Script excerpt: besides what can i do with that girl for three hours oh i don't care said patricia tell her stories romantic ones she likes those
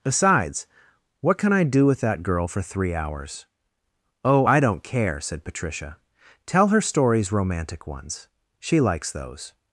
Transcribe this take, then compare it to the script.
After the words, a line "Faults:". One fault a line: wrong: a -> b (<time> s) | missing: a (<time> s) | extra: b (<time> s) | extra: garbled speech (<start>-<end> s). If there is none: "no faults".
besides what can i do with that girl for three hours oh i don't care said patricia tell her stories romantic ones she likes those
Faults:
no faults